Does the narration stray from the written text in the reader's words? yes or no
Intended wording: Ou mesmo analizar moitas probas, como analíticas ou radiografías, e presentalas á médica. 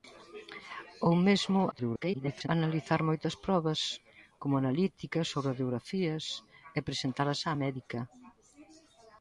yes